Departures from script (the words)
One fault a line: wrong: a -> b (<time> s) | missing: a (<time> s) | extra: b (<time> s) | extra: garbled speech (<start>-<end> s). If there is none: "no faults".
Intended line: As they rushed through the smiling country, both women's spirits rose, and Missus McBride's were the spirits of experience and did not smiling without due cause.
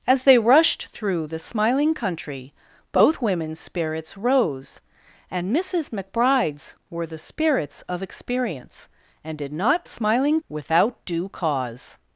no faults